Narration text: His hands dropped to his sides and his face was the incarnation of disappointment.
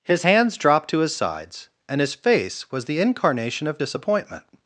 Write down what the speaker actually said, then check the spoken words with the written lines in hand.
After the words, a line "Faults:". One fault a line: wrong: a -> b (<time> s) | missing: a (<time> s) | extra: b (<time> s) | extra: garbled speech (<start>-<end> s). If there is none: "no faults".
His hands dropped to his sides and his face was the incarnation of disappointment.
Faults:
no faults